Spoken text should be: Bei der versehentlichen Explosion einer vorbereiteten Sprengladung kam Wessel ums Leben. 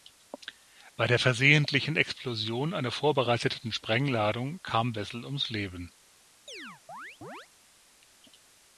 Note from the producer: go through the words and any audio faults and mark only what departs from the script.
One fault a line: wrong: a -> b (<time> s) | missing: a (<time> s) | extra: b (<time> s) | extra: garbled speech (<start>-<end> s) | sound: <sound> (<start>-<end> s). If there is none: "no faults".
sound: chirp (6.5-7.5 s)